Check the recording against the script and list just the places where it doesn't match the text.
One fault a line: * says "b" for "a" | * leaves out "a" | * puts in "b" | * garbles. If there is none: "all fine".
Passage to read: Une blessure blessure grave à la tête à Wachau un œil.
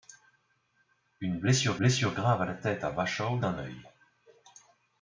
all fine